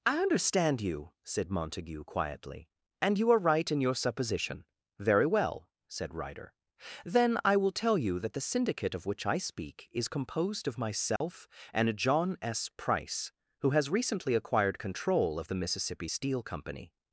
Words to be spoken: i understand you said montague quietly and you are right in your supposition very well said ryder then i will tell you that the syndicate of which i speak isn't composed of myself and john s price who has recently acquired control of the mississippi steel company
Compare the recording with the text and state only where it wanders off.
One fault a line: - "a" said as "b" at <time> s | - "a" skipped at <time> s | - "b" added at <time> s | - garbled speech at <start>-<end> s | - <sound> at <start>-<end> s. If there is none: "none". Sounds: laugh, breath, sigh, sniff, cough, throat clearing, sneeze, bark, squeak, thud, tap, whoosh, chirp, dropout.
- "isn't" said as "is" at 9.9 s
- dropout at 11.2-11.2 s